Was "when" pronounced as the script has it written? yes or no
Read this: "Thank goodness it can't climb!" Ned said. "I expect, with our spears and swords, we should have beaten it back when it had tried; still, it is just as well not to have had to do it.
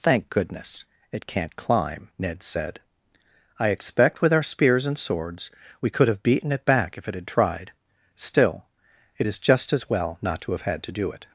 no